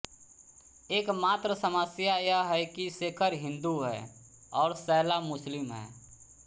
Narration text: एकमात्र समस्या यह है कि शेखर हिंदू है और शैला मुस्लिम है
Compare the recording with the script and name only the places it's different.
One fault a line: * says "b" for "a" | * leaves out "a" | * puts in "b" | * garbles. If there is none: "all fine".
all fine